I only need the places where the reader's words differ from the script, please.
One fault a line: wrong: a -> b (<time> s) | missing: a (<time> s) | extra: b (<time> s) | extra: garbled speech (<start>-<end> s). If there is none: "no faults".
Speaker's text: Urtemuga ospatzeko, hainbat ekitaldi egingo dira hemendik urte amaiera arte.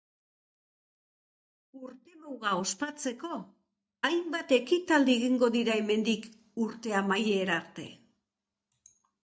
no faults